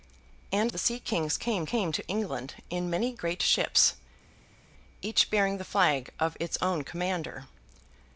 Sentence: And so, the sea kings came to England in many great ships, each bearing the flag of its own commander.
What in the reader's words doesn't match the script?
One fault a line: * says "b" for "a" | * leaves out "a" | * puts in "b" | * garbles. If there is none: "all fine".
* leaves out "so"
* puts in "came"